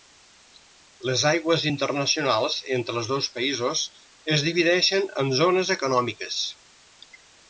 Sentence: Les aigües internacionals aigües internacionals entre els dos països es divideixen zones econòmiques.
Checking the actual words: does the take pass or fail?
fail